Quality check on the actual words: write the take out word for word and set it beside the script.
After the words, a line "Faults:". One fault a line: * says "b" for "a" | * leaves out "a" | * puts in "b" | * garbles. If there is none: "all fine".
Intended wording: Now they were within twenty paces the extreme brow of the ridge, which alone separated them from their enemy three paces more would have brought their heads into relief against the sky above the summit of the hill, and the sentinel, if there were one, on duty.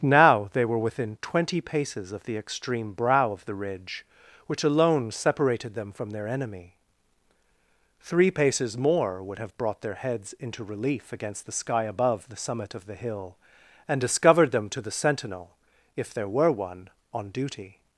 Now they were within twenty paces of the extreme brow of the ridge, which alone separated them from their enemy three paces more would have brought their heads into relief against the sky above the summit of the hill, and discovered them to the sentinel, if there were one, on duty.
Faults:
* puts in "of"
* puts in "discovered them to"